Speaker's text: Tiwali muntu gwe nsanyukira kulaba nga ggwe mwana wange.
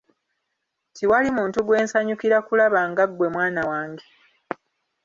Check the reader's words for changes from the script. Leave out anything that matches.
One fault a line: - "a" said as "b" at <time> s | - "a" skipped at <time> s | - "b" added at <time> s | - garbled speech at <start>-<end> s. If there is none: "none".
none